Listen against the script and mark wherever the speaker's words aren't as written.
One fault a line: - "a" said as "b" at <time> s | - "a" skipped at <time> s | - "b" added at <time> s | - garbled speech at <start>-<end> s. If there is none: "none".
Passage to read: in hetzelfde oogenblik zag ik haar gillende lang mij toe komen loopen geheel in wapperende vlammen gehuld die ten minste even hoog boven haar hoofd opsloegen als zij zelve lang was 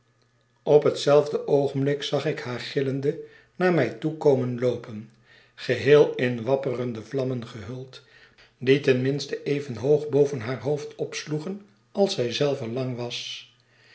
- "in" said as "op" at 0.6 s
- "lang" said as "naar" at 3.5 s